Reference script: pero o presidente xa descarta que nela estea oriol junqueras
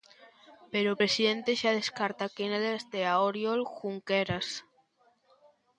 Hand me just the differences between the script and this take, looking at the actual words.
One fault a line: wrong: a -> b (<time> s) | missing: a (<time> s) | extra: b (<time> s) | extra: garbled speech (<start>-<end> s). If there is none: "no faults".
no faults